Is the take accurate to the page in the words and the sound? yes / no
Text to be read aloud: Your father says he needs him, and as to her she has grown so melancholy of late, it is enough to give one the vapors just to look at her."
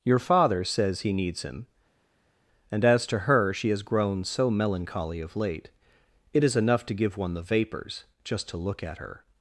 yes